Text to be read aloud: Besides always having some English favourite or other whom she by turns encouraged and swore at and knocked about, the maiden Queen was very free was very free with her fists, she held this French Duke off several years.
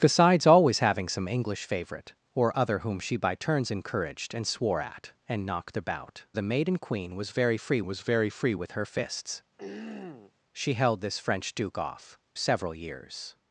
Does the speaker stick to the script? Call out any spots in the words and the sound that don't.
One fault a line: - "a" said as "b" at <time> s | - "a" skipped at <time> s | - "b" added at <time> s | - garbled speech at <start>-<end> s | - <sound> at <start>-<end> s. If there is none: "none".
- throat clearing at 9.6-10.3 s